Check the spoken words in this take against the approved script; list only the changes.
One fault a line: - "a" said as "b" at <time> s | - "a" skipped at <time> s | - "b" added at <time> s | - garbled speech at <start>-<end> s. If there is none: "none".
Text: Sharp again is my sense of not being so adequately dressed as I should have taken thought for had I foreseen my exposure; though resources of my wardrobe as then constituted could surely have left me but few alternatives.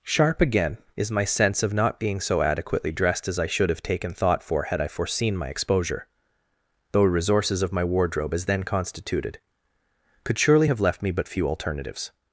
none